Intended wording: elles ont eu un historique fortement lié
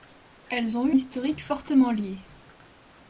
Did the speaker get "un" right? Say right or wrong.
wrong